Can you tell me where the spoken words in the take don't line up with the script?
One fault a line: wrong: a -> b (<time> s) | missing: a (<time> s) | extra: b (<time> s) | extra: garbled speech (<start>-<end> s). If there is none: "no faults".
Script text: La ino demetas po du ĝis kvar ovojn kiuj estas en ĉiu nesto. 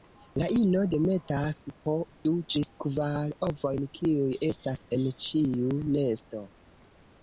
no faults